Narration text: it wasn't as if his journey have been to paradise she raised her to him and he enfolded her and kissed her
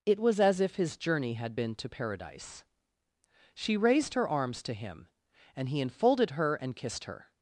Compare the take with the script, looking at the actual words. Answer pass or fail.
fail